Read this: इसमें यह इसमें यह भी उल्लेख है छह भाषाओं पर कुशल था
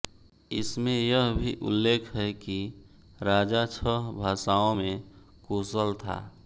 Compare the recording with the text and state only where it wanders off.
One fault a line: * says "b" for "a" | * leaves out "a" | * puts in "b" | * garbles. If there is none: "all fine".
* leaves out "इसमें यह"
* puts in "कि राजा"
* says "में" for "पर"